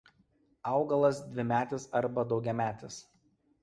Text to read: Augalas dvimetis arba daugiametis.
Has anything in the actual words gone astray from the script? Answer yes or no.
no